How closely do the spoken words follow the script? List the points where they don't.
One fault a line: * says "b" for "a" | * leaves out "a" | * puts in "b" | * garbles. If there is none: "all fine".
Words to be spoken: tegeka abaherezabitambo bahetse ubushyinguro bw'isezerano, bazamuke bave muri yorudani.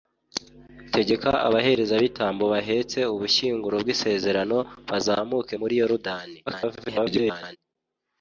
* leaves out "bave"
* garbles